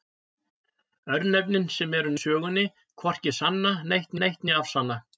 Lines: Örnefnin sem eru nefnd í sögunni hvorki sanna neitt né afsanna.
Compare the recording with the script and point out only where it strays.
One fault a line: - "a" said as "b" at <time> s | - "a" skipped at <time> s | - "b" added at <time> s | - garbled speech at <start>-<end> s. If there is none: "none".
- "nefnd" skipped at 2.1 s
- "neitt" added at 4.2 s